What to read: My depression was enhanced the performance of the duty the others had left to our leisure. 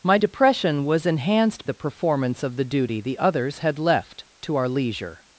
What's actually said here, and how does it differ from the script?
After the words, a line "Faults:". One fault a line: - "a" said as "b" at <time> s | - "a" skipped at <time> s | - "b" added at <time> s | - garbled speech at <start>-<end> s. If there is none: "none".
My depression was enhanced the performance of the duty the others had left to our leisure.
Faults:
none